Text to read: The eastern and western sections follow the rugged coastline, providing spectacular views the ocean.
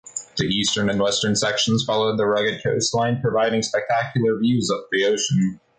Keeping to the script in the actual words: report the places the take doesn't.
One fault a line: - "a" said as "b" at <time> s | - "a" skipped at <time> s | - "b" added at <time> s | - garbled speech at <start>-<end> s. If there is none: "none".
- "of" added at 4.7 s